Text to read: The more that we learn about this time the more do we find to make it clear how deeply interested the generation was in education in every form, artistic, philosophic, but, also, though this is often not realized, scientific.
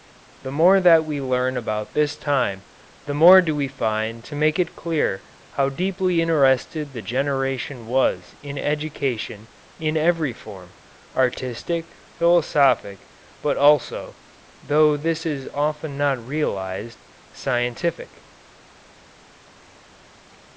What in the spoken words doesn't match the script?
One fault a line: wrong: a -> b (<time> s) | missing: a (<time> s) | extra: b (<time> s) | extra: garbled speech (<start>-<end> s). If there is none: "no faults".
no faults